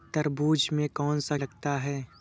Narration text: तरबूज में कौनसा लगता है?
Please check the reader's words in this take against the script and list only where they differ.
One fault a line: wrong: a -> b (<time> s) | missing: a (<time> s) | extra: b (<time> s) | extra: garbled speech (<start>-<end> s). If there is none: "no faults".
no faults